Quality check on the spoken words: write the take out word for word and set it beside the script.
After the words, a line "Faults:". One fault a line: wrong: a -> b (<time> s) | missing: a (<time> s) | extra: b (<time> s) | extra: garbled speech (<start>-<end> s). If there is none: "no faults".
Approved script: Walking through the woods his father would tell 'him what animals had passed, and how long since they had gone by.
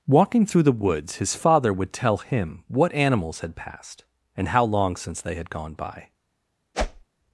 Walking through the woods his father would tell 'him what animals had passed, and how long since they had gone by.
Faults:
no faults